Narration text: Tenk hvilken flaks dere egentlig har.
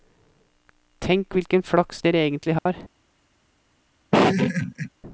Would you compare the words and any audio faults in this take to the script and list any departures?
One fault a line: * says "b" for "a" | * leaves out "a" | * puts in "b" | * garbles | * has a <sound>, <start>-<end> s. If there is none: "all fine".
* has a dropout, 2.6-2.7 s
* has a laugh, 4.1-4.9 s